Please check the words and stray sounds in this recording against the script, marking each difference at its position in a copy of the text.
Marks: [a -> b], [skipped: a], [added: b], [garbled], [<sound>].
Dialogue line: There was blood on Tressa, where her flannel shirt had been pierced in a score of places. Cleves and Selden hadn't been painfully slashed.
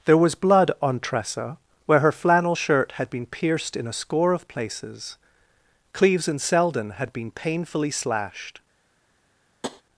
There was blood on Tressa, where her flannel shirt had been pierced in a score of places. Cleves and Selden [hadn't -> had] been painfully slashed. [tap]